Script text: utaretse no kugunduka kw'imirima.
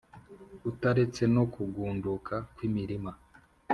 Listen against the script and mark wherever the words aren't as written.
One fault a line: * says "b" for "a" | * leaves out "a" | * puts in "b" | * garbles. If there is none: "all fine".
all fine